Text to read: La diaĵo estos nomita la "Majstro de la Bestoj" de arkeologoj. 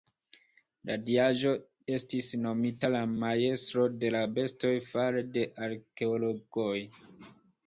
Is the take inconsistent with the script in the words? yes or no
yes